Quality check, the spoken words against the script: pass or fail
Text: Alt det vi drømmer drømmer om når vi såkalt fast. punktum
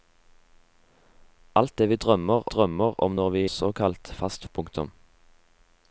pass